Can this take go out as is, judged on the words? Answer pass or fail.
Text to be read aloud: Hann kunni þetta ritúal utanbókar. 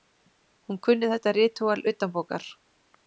fail